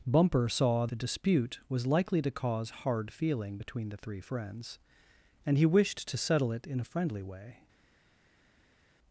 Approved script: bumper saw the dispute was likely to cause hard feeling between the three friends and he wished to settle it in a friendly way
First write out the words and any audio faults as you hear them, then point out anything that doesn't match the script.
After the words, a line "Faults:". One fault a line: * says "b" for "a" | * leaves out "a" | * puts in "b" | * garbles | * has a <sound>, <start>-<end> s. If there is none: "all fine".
bumper saw the dispute was likely to cause hard feeling between the three friends and he wished to settle it in a friendly way
Faults:
all fine